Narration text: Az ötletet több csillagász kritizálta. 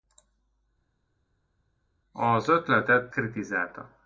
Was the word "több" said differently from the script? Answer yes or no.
yes